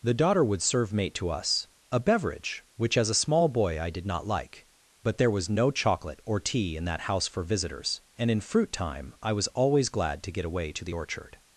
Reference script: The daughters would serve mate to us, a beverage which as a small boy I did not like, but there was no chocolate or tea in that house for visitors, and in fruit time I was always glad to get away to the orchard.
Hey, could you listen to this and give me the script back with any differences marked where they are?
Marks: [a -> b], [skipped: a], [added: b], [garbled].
The [daughters -> daughter] would serve mate to us, a beverage which as a small boy I did not like, but there was no chocolate or tea in that house for visitors, and in fruit time I was always glad to get away to the orchard.